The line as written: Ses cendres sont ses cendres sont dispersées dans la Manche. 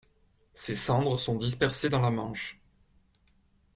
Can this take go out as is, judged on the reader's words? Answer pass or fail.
fail